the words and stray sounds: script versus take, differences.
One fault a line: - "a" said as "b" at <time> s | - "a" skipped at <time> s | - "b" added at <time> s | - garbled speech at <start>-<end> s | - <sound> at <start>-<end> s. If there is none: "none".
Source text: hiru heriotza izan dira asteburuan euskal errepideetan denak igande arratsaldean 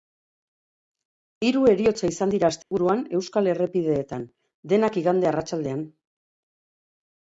- dropout at 2.6-2.7 s